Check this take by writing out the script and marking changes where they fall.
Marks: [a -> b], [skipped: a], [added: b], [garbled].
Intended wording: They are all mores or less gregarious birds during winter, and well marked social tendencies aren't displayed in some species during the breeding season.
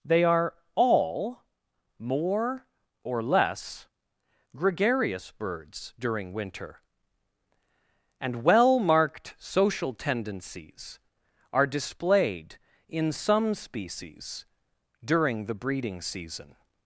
They are all [mores -> more] or less gregarious birds during winter, and well marked social tendencies [aren't -> are] displayed in some species during the breeding season.